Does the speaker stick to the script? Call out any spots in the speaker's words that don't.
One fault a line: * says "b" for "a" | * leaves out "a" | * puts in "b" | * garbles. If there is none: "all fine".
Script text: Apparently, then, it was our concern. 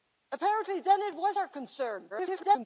* garbles